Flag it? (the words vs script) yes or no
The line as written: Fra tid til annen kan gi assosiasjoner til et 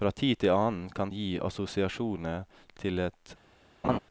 no